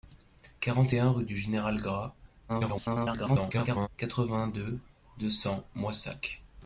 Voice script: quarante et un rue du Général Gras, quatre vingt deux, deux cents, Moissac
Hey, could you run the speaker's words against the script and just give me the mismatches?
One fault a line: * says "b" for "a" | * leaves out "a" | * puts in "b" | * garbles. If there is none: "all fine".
* garbles